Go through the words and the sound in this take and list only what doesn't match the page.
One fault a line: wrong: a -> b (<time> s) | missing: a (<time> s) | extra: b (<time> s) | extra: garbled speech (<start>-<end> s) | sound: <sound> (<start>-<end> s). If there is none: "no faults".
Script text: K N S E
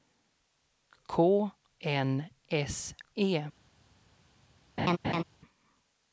sound: laugh (4.8-5.2 s)